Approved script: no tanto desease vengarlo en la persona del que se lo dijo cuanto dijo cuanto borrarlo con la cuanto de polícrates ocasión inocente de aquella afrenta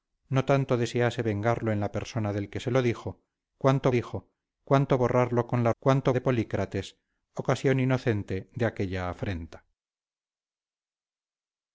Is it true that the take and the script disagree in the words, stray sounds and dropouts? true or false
false